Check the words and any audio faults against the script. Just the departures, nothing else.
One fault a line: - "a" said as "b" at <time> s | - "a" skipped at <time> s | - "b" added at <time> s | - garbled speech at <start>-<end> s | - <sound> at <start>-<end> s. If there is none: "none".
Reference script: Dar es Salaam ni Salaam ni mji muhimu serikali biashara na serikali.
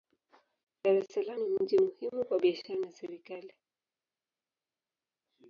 - "Salaam ni" skipped at 1.6 s
- "serikali" said as "kwa" at 2.2 s